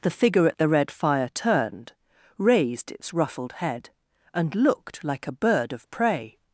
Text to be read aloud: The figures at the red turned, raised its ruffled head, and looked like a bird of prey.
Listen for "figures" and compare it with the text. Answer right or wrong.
wrong